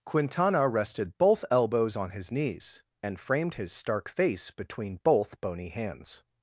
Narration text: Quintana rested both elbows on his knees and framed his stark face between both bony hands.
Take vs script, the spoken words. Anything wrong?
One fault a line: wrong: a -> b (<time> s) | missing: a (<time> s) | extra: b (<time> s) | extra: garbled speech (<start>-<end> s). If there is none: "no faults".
no faults